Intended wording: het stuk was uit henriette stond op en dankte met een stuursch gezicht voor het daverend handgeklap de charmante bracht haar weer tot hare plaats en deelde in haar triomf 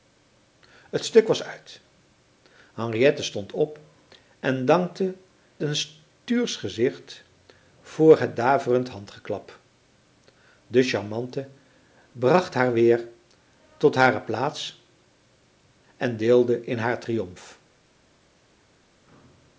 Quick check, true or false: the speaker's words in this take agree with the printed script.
false